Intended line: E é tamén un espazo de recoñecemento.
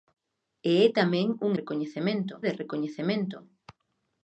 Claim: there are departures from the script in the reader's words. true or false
true